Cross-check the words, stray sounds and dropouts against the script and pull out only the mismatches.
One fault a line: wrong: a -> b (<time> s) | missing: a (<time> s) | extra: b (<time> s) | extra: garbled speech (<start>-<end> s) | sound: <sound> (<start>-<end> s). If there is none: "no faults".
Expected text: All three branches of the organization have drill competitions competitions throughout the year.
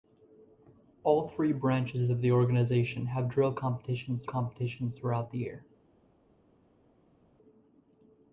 no faults